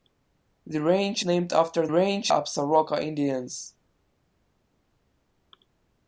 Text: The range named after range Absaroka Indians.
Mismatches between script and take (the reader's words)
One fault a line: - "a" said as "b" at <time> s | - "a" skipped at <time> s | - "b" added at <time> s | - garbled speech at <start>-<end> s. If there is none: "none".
none